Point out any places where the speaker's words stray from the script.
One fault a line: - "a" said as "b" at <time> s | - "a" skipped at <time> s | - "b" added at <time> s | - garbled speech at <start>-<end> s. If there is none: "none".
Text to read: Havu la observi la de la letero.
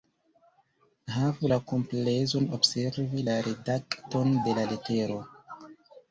- "komplezon" added at 1.7 s
- "redakton" added at 3.5 s